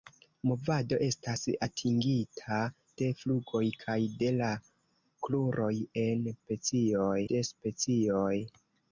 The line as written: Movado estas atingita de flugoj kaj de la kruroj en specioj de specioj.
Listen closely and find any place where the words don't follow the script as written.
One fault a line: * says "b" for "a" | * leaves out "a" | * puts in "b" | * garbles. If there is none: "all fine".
all fine